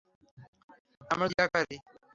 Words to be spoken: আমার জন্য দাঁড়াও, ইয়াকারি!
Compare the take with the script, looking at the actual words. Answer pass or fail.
fail